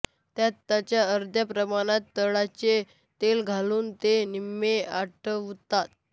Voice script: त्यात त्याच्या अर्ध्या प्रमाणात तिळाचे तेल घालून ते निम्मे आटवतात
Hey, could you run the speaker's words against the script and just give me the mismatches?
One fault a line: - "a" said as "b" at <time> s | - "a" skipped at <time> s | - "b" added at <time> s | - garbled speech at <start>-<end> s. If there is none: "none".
none